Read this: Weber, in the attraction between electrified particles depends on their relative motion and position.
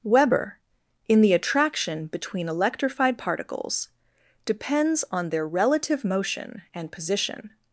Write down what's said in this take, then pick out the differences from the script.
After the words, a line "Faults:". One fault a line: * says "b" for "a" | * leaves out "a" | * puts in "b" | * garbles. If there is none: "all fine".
Weber, in the attraction between electrified particles depends on their relative motion and position.
Faults:
all fine